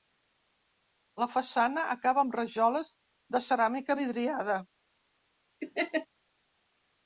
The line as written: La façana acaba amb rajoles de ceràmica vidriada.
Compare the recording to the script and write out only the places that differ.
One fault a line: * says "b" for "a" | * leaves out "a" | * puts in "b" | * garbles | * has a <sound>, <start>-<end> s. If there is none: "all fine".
* has a laugh, 5.6-6.1 s